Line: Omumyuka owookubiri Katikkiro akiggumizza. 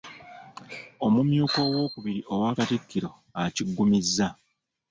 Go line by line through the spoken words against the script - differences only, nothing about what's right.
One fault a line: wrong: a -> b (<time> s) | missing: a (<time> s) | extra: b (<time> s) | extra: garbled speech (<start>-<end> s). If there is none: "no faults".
extra: owa (2.3 s)